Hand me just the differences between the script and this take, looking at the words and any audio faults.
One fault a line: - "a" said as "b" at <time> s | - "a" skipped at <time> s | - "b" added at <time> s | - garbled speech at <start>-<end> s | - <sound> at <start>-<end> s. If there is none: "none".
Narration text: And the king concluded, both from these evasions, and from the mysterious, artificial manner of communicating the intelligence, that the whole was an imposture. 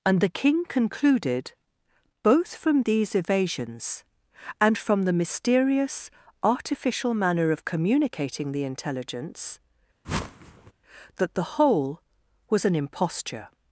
- whoosh at 10.0-10.7 s